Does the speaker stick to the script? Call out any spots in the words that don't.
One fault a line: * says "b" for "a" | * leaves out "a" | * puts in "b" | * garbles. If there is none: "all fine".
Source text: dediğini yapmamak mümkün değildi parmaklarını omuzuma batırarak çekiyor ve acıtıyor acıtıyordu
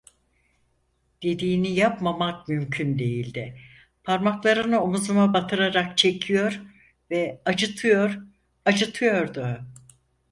all fine